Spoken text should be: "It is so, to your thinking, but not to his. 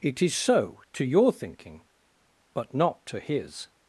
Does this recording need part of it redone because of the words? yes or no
no